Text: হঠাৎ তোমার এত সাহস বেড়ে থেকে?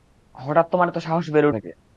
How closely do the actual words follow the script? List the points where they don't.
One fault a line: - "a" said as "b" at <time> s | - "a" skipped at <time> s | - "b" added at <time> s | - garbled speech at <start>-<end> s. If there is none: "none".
none